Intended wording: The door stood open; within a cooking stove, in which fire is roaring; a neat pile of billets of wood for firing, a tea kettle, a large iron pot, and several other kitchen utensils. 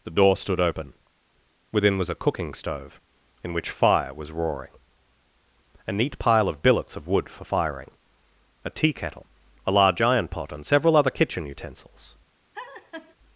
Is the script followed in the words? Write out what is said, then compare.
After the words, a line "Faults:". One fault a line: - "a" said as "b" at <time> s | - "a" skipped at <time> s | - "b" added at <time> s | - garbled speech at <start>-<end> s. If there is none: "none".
The door stood open; within was a cooking stove, in which fire was roaring; a neat pile of billets of wood for firing, a tea kettle, a large iron pot, and several other kitchen utensils.
Faults:
- "was" added at 2.0 s
- "is" said as "was" at 4.1 s